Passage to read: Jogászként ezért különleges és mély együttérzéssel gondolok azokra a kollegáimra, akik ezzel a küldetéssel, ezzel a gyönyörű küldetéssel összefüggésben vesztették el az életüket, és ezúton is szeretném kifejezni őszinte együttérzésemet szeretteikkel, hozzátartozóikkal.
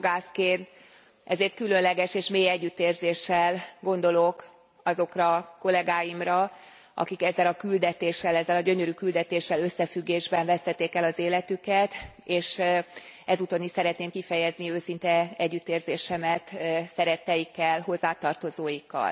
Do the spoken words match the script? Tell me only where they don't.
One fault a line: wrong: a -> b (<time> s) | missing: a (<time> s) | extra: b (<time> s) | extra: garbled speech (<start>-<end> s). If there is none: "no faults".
no faults